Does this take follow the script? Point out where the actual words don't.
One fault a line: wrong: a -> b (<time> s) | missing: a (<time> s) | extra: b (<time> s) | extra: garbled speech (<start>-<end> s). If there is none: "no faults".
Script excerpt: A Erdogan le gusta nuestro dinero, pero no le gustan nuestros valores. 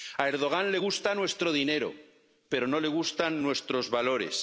no faults